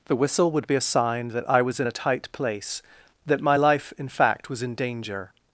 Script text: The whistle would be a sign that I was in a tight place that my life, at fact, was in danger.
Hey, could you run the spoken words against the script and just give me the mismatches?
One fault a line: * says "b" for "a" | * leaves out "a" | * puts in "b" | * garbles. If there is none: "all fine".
* says "in" for "at"